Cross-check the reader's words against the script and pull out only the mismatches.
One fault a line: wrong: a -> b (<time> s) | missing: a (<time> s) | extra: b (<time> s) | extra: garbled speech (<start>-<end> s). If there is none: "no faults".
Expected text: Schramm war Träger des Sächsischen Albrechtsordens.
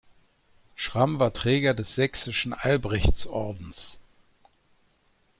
no faults